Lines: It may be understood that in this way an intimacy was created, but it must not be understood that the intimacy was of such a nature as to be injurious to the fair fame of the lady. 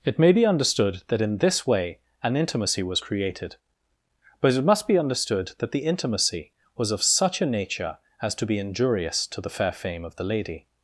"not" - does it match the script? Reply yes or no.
no